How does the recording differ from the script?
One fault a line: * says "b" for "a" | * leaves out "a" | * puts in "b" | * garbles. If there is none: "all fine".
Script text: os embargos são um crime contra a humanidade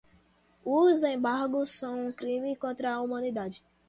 all fine